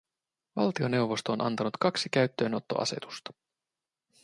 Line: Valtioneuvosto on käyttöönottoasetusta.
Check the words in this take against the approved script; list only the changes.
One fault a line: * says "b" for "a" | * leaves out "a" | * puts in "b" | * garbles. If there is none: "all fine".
* puts in "antanut kaksi"